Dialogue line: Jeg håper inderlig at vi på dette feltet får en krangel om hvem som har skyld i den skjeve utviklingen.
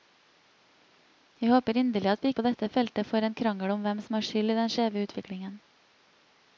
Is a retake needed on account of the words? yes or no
no